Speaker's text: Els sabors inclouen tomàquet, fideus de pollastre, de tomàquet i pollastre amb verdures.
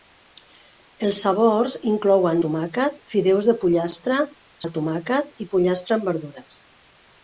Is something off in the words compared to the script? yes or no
no